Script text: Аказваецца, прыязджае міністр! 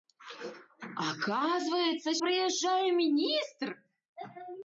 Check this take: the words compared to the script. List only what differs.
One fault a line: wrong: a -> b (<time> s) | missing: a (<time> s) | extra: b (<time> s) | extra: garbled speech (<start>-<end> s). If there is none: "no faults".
no faults